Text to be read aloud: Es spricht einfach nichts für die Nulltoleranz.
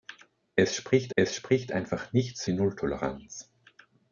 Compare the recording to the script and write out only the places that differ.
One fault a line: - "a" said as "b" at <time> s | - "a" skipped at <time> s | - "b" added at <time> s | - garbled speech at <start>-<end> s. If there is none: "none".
- "es spricht" added at 1.1 s
- "für" skipped at 2.4 s